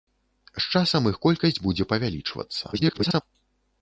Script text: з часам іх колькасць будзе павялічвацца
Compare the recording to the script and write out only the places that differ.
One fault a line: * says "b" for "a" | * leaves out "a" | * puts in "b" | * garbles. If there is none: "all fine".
* garbles